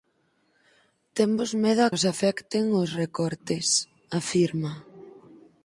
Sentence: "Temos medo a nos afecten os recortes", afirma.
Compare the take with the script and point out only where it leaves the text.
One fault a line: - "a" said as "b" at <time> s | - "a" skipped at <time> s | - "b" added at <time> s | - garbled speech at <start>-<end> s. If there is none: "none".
none